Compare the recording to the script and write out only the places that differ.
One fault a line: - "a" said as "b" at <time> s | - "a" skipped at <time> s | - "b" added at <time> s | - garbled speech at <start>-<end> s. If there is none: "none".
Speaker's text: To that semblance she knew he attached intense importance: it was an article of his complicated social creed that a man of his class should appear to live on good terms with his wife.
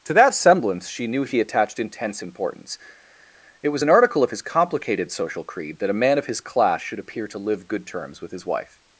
- "on" skipped at 7.7 s